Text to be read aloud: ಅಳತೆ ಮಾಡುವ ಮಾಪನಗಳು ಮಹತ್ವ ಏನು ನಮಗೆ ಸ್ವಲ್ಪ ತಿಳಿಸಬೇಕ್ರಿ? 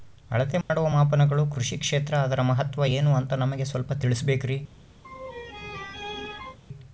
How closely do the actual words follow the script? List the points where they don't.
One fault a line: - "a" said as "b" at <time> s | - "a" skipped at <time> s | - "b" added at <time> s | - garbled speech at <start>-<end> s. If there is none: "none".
- "ಕೃಷಿ ಕ್ಷೇತ್ರ ಅದರ" added at 1.5 s
- "ಅಂತ" added at 3.2 s